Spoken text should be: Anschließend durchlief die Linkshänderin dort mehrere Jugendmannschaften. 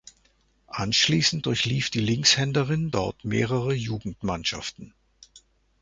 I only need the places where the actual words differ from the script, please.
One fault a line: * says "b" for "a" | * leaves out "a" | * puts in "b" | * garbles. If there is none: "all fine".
all fine